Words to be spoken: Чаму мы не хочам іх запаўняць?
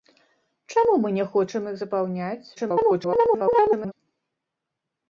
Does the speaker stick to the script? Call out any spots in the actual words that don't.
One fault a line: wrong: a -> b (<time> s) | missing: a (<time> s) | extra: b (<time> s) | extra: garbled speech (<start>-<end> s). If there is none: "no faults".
extra: garbled speech (2.6-3.9 s)